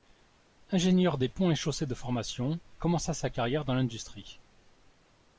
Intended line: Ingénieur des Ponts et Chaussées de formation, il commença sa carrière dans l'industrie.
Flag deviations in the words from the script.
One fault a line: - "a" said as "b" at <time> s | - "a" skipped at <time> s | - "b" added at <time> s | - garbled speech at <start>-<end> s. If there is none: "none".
- "il" skipped at 2.6 s